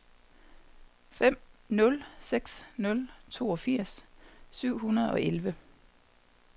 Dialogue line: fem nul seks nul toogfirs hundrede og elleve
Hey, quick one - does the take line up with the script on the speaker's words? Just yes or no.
no